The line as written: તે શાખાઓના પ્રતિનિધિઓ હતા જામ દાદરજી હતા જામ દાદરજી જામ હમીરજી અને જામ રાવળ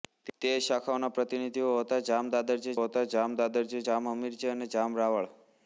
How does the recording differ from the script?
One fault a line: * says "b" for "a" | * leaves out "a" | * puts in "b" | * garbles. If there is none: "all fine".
all fine